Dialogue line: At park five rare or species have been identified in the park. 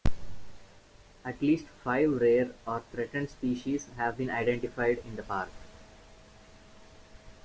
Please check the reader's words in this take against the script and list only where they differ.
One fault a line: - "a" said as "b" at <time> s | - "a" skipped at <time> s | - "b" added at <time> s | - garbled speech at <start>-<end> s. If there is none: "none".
- "park" said as "least" at 1.4 s
- "threatened" added at 2.8 s